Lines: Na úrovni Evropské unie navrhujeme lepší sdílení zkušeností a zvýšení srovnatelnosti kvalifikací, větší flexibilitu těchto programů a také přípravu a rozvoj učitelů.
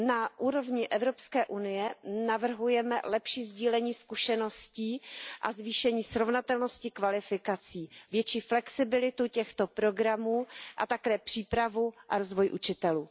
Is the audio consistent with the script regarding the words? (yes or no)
yes